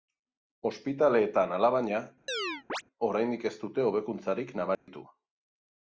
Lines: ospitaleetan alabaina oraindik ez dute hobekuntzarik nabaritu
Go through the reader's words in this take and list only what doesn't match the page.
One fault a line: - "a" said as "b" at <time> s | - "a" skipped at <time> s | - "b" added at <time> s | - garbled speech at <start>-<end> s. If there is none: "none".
none